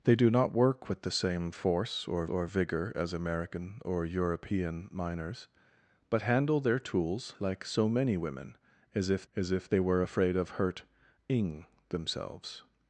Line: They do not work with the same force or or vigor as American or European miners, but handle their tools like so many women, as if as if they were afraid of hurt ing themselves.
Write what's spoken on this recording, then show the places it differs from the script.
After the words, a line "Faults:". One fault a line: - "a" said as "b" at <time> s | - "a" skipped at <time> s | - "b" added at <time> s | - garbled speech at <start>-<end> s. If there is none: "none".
They do not work with the same force or or vigor as American or European miners, but handle their tools like so many women, as if as if they were afraid of hurt ing themselves.
Faults:
none